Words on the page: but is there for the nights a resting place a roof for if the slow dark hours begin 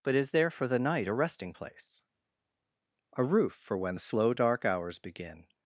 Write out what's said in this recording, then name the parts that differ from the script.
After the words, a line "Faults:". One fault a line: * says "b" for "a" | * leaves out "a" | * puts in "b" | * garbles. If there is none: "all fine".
but is there for the night a resting place a roof for when the slow dark hours begin
Faults:
* says "night" for "nights"
* says "when" for "if"